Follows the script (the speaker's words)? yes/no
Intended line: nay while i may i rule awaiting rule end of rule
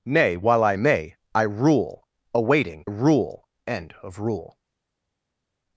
yes